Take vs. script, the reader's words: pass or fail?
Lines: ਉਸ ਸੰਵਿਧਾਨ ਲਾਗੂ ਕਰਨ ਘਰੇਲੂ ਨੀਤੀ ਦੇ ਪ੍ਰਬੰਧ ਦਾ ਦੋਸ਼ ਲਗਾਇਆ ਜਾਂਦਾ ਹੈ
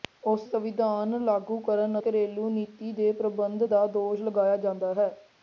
pass